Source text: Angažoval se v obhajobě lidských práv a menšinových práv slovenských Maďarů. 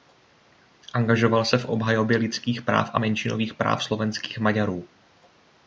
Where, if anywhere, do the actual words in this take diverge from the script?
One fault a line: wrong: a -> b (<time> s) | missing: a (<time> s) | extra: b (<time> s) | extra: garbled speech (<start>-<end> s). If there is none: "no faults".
no faults